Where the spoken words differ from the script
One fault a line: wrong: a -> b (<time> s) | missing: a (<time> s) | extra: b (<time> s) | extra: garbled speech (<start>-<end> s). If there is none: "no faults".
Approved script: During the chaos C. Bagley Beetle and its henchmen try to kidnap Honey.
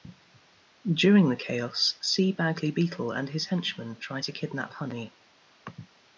wrong: its -> his (3.3 s)